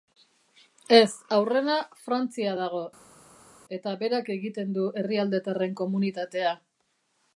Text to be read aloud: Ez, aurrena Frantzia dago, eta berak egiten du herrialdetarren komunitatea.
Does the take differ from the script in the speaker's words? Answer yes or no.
no